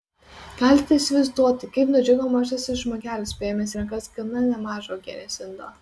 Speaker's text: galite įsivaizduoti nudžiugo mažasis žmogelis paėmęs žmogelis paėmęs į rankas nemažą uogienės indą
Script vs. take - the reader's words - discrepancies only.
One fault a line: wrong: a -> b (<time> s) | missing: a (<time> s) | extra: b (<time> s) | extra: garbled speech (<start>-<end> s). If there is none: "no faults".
extra: kaip (1.8 s)
missing: žmogelis paėmęs (3.8 s)
extra: gana (4.2 s)